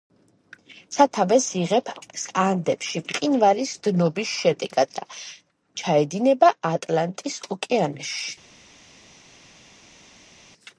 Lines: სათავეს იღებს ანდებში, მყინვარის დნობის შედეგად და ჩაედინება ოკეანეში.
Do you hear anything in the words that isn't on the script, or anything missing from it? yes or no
yes